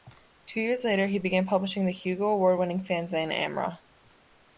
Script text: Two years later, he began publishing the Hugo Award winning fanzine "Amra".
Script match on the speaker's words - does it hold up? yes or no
yes